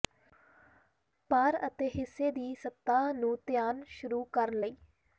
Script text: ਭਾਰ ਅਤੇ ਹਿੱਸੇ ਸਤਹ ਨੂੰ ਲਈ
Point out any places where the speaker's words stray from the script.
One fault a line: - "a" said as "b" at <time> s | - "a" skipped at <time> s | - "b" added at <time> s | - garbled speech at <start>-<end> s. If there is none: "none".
- "ਦੀ" added at 2.3 s
- "ਧਿਆਨ ਸ਼ੁਰੂ ਕਰਨ" added at 3.5 s